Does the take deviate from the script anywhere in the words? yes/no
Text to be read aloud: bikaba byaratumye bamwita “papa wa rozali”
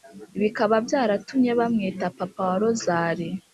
no